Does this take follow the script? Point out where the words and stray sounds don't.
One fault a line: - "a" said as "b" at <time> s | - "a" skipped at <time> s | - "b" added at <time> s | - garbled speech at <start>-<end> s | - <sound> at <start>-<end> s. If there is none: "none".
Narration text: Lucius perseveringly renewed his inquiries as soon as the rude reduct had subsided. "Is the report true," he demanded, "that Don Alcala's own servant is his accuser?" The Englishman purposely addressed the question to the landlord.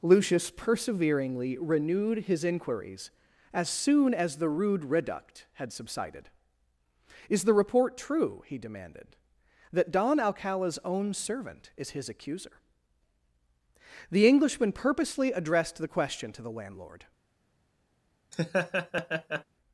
- laugh at 18.3-19.4 s